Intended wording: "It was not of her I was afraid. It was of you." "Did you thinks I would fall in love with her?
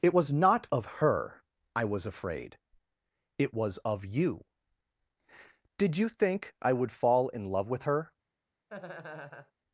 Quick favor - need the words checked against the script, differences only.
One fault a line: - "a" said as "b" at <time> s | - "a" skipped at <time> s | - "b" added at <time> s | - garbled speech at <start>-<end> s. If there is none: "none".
- "thinks" said as "think" at 6.1 s